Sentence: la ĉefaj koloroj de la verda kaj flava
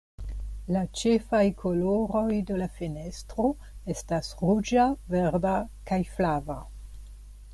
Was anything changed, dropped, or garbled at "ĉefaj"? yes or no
no